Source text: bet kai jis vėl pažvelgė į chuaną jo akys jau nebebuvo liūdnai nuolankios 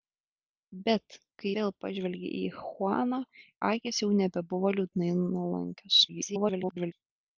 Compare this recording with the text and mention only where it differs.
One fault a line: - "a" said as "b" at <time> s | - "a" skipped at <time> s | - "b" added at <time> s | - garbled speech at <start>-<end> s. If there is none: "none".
- "jis" skipped at 1.5 s
- "jo" skipped at 3.2 s
- garbled speech at 6.1-6.9 s